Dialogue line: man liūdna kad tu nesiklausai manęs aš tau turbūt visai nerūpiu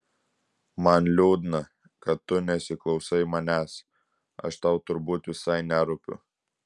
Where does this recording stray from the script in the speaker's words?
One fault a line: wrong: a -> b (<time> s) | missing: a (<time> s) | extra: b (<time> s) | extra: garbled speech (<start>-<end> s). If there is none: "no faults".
no faults